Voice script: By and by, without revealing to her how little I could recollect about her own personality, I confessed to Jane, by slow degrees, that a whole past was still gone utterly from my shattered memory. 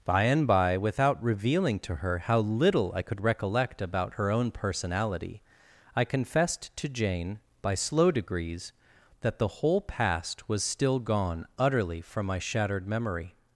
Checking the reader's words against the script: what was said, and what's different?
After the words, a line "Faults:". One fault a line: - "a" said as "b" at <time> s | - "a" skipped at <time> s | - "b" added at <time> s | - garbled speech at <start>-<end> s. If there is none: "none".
By and by, without revealing to her how little I could recollect about her own personality, I confessed to Jane, by slow degrees, that the whole past was still gone utterly from my shattered memory.
Faults:
- "a" said as "the" at 9.4 s